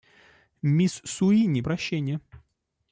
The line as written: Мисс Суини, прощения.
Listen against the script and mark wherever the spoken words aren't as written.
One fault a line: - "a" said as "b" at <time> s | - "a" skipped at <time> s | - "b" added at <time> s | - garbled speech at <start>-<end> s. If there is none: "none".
none